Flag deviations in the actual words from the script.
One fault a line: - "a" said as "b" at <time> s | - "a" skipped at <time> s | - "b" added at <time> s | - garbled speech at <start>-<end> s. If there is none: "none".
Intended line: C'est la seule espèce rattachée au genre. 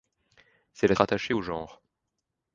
- "seule espèce" skipped at 0.9 s